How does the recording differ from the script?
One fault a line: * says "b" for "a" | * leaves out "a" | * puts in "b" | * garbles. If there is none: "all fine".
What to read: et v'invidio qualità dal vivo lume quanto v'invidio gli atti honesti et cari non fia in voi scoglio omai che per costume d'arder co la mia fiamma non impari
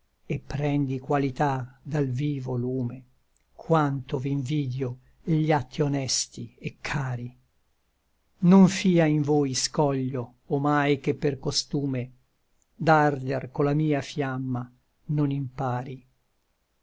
* says "prendi" for "v'invidio"